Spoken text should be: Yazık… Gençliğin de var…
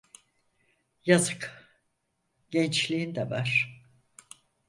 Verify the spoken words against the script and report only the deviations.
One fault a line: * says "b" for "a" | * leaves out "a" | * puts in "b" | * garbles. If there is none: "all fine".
all fine